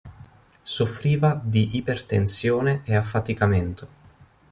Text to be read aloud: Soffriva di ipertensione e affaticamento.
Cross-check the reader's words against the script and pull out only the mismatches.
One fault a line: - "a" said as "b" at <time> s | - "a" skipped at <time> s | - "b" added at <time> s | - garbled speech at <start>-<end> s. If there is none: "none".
none